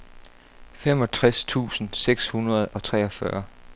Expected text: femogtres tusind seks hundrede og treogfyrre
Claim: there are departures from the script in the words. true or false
false